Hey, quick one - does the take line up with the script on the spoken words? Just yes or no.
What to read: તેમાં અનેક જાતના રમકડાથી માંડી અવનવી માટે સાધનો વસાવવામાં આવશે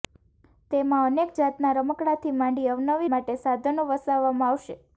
yes